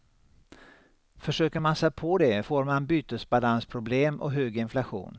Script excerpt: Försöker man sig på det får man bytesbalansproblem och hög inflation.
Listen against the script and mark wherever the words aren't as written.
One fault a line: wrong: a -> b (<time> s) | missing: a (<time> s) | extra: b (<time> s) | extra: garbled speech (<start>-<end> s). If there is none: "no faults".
no faults